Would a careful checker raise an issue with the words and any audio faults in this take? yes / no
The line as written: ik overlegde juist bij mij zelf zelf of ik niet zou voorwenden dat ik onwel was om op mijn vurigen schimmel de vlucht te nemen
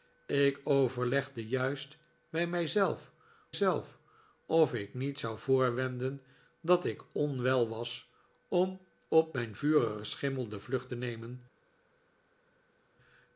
no